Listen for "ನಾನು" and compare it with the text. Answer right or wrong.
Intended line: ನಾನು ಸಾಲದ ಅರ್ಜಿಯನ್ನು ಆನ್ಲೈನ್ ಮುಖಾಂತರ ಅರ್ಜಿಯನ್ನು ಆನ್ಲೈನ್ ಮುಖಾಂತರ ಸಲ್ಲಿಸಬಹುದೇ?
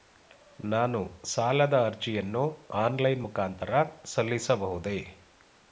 right